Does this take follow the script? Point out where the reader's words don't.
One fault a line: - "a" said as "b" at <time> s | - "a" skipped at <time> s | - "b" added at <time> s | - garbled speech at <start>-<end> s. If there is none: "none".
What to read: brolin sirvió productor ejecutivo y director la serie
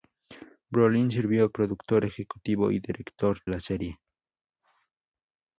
none